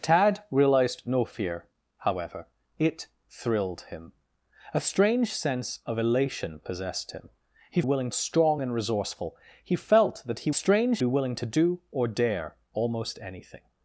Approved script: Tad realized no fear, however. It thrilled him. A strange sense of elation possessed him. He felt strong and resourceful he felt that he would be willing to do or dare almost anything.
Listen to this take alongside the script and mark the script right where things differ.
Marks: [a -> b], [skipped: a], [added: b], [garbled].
Tad realized no fear, however. It thrilled him. A strange sense of elation possessed him. He [felt -> willing] strong and resourceful he felt that he [would -> strange] be willing to do or dare almost anything.